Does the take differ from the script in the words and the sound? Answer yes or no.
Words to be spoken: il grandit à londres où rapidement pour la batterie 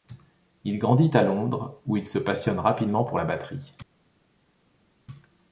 yes